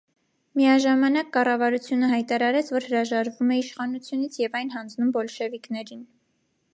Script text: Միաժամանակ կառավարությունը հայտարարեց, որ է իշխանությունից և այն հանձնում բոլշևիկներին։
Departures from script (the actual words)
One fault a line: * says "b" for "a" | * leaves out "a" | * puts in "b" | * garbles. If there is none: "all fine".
* puts in "հրաժարվում"